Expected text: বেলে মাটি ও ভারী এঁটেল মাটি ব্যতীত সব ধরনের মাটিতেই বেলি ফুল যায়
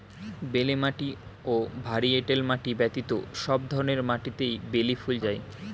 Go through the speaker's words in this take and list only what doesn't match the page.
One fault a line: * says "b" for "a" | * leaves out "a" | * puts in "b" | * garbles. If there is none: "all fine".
all fine